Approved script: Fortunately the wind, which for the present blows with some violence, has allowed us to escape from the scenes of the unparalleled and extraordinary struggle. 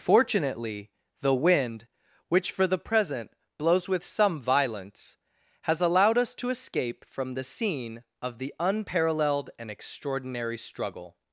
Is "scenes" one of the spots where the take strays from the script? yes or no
yes